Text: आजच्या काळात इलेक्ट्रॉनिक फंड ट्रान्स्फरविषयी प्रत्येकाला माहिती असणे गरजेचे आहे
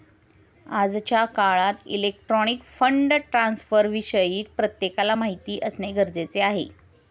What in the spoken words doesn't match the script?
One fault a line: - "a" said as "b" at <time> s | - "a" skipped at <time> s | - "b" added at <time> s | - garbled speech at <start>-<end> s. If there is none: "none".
none